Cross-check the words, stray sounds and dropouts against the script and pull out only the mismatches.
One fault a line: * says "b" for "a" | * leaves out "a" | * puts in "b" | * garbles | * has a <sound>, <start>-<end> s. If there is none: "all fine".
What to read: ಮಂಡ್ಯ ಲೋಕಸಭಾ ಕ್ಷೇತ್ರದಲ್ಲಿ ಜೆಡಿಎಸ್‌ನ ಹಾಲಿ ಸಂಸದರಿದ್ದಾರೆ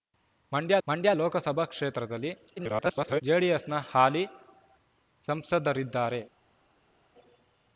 * puts in "ಮಂಡ್ಯ"
* garbles